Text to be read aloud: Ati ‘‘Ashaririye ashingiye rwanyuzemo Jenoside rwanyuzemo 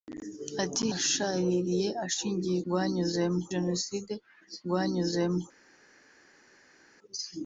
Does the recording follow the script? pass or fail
pass